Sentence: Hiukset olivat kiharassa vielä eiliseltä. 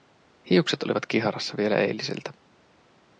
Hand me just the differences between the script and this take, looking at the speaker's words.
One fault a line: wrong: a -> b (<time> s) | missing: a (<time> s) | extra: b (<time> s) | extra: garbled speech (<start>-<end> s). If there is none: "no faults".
no faults